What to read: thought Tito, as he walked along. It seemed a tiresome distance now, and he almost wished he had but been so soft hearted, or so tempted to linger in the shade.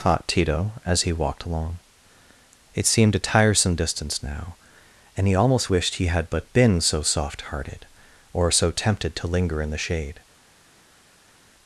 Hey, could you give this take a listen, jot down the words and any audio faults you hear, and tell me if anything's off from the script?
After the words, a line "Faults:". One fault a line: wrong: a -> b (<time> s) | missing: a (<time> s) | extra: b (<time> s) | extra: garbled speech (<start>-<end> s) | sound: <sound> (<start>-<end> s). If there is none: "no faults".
thought Tito, as he walked along. It seemed a tiresome distance now, and he almost wished he had but been so soft hearted, or so tempted to linger in the shade.
Faults:
no faults